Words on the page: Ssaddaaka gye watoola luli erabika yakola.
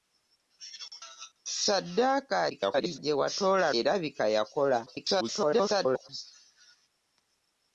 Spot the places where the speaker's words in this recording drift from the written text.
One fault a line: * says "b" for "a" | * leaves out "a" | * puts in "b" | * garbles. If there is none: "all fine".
* garbles
* leaves out "luli"
* garbles